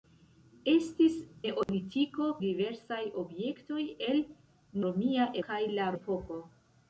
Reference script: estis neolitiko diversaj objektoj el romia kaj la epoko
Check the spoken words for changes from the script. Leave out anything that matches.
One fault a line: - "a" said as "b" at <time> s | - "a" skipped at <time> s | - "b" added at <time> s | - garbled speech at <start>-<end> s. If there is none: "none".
none